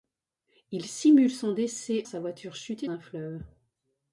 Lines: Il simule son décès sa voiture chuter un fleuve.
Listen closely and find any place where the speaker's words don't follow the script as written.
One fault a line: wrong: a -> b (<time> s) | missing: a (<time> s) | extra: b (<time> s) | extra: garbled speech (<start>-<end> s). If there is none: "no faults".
no faults